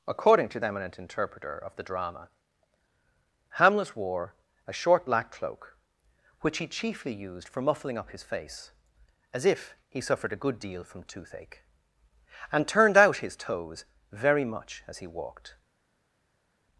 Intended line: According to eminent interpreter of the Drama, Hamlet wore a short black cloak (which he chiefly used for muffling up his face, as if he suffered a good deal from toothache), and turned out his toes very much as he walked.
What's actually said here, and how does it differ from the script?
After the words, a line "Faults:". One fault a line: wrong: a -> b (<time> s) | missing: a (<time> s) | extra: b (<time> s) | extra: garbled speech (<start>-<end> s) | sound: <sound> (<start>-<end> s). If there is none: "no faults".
According to eminent interpreter of the Drama, Hamlet wore a short black cloak (which he chiefly used for muffling up his face, as if he suffered a good deal from toothache), and turned out his toes very much as he walked.
Faults:
no faults